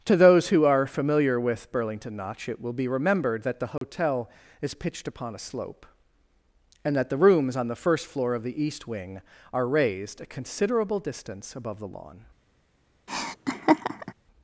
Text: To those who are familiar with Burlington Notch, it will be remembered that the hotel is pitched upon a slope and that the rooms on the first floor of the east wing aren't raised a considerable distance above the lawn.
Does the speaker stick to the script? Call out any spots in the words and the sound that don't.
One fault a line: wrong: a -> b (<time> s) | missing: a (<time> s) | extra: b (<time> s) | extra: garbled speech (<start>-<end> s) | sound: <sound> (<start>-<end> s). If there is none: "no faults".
sound: dropout (3.8-3.8 s)
wrong: aren't -> are (9.5 s)
sound: laugh (13.1-14.1 s)